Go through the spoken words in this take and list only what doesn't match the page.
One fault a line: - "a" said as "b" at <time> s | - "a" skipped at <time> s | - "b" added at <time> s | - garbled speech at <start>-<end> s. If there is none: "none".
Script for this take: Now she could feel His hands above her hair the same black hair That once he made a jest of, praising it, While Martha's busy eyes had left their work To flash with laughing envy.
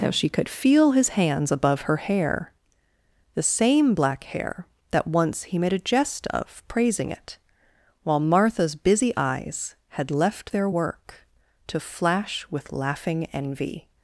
none